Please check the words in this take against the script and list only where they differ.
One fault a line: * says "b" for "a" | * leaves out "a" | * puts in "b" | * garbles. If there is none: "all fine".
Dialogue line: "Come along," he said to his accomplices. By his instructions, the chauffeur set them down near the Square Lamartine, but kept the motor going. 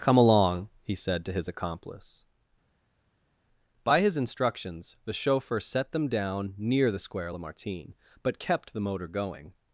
* says "accomplice" for "accomplices"